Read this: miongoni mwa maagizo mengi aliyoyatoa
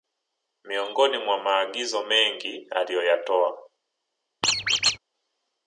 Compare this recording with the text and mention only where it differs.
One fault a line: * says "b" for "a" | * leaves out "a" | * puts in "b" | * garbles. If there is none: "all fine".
all fine